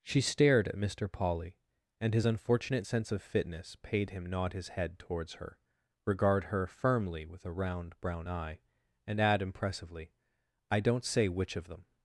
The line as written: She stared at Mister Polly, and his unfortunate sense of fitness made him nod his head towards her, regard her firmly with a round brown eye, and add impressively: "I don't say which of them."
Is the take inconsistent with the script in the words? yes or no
yes